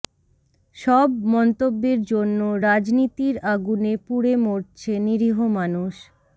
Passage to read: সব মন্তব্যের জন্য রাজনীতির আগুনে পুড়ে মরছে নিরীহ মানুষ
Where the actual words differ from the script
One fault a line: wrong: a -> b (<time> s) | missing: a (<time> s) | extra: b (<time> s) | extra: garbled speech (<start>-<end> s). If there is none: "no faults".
no faults